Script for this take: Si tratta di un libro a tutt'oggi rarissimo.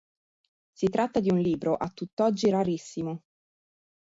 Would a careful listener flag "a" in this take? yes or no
no